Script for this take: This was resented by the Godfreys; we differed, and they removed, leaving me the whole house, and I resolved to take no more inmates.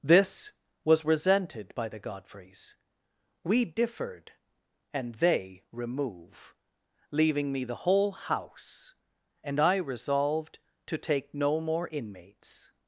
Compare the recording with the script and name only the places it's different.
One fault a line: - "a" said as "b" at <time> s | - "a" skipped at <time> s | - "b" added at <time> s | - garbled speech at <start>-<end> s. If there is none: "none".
- "removed" said as "remove" at 5.7 s